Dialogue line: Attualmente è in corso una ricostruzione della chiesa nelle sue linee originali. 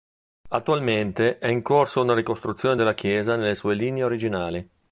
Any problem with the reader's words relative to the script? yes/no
no